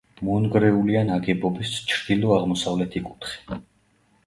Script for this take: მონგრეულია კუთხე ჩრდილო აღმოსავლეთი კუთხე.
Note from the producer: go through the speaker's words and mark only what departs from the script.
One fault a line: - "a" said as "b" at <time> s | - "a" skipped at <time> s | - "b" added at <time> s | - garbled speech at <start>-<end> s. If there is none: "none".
- "კუთხე" said as "ნაგებობის" at 1.1 s